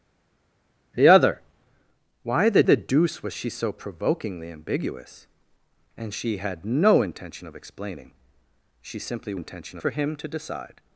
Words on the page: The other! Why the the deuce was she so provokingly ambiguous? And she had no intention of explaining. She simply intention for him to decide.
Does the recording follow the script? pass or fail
pass